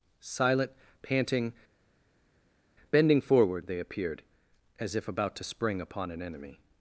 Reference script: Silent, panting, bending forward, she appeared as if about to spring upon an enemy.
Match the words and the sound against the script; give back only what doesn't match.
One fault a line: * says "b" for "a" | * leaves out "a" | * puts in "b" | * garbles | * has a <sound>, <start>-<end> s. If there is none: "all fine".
* says "they" for "she"